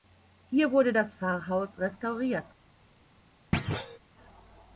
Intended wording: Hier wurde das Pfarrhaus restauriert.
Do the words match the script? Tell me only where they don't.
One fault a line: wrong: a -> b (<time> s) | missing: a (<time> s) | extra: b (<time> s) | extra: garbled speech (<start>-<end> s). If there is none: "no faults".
no faults